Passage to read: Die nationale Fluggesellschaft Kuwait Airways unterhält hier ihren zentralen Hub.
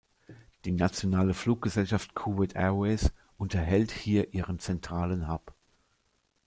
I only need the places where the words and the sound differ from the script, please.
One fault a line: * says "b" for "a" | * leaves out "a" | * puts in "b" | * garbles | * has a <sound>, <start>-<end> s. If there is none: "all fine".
all fine